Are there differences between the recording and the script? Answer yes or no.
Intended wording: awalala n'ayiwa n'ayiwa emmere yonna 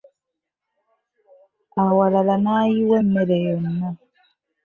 yes